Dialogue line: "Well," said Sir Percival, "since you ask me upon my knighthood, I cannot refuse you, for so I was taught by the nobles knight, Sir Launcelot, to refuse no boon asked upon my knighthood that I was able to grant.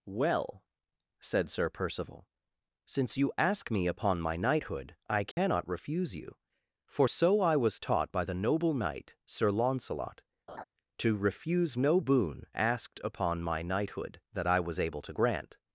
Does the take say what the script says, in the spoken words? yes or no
no